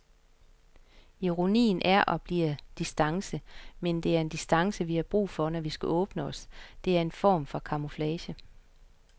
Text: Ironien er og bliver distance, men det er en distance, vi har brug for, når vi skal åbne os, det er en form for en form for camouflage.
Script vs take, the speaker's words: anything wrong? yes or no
yes